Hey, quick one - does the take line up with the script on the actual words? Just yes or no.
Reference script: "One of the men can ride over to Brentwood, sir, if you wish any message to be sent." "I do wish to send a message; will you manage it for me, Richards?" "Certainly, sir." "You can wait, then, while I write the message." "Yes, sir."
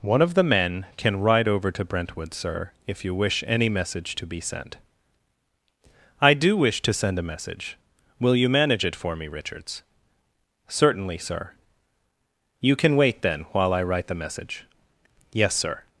yes